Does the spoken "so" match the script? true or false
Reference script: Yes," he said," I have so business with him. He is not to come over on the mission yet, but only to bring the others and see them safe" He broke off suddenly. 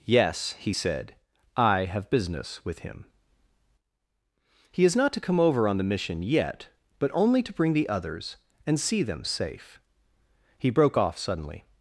false